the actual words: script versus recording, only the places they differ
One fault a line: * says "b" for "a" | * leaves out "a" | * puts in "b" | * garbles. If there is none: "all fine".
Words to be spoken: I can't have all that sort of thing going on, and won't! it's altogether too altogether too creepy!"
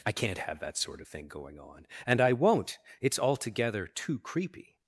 * leaves out "all"
* puts in "I"
* leaves out "altogether too"